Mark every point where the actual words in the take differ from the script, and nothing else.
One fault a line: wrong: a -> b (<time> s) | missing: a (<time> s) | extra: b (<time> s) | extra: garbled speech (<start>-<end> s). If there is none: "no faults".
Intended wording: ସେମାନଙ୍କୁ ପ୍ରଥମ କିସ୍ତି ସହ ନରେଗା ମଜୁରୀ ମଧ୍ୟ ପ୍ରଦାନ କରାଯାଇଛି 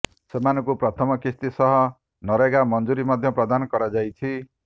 no faults